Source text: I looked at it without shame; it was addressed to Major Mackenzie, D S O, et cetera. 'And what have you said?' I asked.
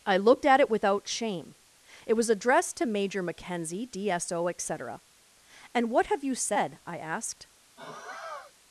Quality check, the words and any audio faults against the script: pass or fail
fail